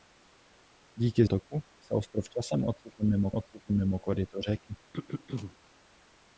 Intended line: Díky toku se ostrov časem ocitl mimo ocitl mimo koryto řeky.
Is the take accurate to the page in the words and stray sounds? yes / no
no